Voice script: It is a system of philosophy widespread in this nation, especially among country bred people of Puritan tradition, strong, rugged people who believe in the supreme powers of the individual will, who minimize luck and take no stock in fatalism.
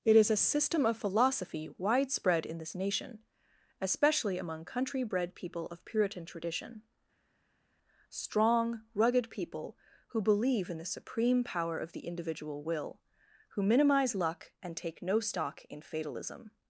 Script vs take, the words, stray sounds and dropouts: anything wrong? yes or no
yes